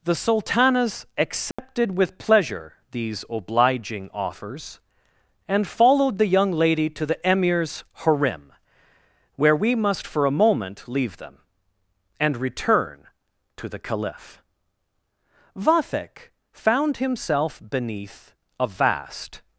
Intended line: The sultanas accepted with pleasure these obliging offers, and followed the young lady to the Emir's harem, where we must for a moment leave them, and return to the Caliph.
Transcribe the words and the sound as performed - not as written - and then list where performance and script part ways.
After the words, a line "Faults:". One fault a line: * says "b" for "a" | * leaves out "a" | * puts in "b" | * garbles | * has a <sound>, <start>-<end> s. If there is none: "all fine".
The sultanas accepted with pleasure these obliging offers, and followed the young lady to the Emir's harem, where we must for a moment leave them, and return to the Caliph. Vathek found himself beneath a vast
Faults:
* has a dropout, 1.5-1.6 s
* puts in "Vathek found himself beneath a vast"